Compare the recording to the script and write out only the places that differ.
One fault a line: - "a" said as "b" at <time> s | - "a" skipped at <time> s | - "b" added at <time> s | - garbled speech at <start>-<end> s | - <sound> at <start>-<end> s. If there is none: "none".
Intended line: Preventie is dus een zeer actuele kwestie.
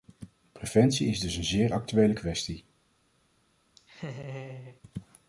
- laugh at 3.8-4.8 s